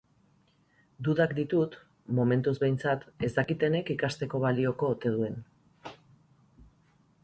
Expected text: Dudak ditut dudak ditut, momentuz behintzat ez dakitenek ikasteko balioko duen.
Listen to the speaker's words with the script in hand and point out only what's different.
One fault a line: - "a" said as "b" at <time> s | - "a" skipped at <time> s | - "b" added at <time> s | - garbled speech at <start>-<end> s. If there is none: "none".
- "dudak ditut" skipped at 1.8 s
- "ote" added at 5.0 s